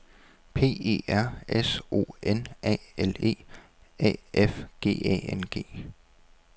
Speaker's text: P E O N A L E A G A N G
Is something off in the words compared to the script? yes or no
yes